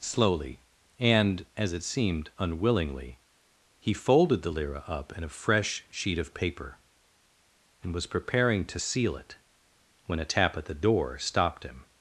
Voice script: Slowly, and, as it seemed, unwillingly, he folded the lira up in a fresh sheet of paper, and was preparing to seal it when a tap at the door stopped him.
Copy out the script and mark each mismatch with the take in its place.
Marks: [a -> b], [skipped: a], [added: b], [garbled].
Slowly, and, as it seemed, unwillingly, he folded the lira up in a fresh sheet of paper, and was preparing to seal it when a tap at the door stopped him.